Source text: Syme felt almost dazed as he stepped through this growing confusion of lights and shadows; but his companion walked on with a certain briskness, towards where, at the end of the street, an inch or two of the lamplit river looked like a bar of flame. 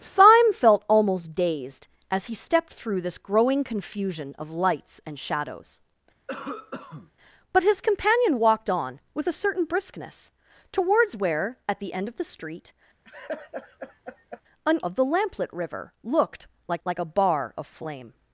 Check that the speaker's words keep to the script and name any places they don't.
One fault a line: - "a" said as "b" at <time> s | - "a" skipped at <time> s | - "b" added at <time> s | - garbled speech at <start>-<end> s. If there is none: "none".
- "inch or two" skipped at 14.8 s
- "like" added at 16.8 s